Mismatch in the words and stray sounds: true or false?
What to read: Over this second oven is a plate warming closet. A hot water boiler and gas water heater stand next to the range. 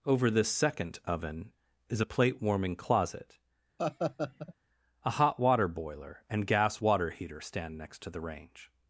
true